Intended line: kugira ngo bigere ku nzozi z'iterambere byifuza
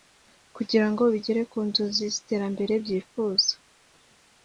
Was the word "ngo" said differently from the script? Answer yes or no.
no